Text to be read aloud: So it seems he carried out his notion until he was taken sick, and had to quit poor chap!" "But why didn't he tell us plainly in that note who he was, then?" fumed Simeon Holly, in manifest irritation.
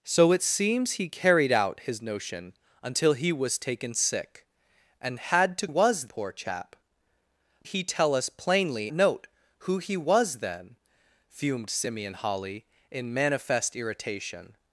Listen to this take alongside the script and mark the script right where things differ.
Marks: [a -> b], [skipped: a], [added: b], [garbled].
So it seems he carried out his notion until he was taken sick, and had to [quit -> was] poor chap!" [skipped: "But why didn't] he tell us plainly [skipped: in that] note who he was, then?" fumed Simeon Holly, in manifest irritation.